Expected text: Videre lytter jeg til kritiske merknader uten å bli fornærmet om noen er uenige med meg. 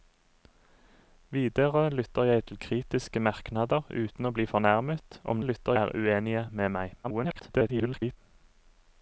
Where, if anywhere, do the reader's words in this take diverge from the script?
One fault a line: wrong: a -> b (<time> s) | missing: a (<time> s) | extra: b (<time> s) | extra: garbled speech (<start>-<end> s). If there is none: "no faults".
wrong: noen -> lytter (5.4 s)
extra: garbled speech (7.0-8.2 s)